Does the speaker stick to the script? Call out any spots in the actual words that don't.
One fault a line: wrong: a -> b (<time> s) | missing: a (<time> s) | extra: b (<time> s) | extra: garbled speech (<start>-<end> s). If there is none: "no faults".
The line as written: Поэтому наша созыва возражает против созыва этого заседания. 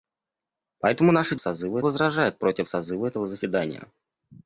no faults